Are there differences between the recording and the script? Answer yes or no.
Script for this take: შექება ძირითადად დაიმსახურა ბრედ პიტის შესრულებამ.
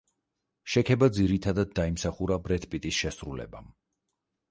no